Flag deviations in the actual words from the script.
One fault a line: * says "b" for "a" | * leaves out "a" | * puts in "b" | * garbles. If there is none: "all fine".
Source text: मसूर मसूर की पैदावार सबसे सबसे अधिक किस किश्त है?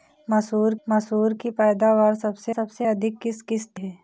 all fine